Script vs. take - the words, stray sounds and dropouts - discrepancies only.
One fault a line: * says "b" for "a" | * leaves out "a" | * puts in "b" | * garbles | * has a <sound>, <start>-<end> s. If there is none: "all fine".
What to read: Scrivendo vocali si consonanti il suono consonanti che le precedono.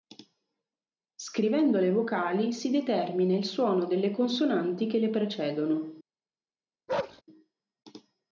* puts in "le"
* says "determina" for "consonanti"
* puts in "delle"
* has a bark, 6.9-7.2 s